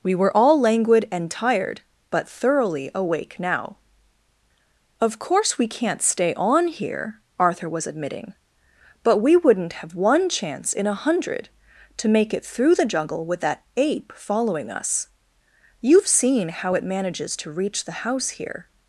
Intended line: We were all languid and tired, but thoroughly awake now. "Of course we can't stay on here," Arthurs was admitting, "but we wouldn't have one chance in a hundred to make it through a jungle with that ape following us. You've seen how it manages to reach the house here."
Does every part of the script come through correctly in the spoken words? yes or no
no